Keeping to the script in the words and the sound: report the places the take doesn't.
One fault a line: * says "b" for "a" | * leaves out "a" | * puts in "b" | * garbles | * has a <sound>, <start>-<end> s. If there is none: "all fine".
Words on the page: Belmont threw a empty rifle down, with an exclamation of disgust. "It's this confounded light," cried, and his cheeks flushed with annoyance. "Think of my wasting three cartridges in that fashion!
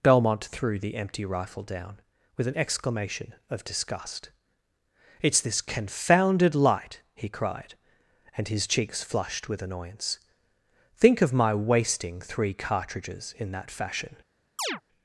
* says "the" for "a"
* puts in "he"
* has a chirp, 14.6-14.8 s